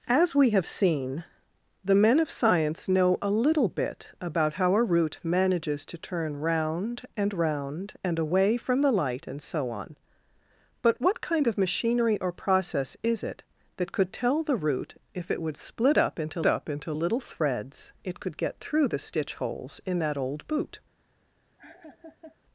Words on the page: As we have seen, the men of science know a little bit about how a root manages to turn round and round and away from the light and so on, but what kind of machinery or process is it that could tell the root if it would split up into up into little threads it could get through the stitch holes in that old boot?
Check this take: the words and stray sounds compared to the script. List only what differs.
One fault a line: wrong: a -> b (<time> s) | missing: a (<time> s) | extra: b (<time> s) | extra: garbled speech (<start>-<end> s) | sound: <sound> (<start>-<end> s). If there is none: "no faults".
sound: laugh (21.6-22.4 s)